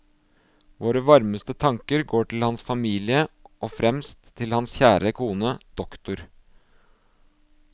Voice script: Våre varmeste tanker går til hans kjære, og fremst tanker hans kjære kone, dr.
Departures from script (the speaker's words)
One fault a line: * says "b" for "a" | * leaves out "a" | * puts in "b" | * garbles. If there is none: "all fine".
* says "familie" for "kjære"
* says "til" for "tanker"